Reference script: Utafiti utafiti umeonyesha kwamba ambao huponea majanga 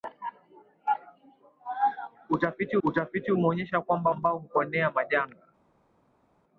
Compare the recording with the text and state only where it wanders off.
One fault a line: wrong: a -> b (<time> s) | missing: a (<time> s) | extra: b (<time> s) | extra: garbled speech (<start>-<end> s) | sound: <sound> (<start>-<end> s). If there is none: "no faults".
no faults